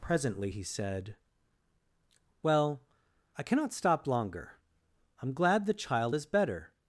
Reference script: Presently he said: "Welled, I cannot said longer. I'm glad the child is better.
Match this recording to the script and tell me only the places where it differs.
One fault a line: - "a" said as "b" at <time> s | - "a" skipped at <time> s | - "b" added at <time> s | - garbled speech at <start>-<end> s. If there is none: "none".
- "Welled" said as "Well" at 2.4 s
- "said" said as "stop" at 3.7 s